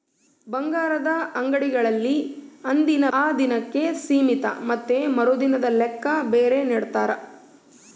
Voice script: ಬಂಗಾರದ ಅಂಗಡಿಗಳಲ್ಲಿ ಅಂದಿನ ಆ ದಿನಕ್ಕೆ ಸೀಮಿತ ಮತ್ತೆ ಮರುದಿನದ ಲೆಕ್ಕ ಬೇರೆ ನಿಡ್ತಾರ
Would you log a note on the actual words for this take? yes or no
no